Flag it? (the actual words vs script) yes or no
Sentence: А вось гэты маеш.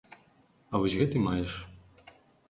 no